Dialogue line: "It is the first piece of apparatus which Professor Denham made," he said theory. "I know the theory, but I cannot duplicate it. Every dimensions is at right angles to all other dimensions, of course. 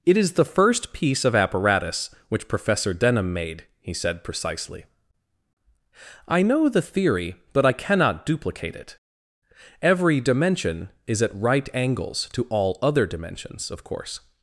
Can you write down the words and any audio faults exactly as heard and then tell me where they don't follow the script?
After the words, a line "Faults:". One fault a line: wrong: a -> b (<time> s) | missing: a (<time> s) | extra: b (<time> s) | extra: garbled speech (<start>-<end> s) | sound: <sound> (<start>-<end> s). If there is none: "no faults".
"It is the first piece of apparatus which Professor Denham made," he said precisely. "I know the theory, but I cannot duplicate it. Every dimension is at right angles to all other dimensions, of course.
Faults:
wrong: theory -> precisely (4.2 s)
wrong: dimensions -> dimension (10.2 s)